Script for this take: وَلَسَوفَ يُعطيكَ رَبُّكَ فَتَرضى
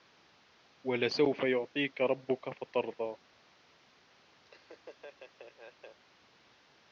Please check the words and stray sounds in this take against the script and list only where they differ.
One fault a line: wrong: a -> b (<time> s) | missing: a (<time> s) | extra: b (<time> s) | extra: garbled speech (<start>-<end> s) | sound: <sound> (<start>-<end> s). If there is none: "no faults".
sound: laugh (4.4-6.0 s)